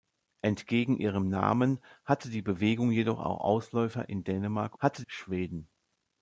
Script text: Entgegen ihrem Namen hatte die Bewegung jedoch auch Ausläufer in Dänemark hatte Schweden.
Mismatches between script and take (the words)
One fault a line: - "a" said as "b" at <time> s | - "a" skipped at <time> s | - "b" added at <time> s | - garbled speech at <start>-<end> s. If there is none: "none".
none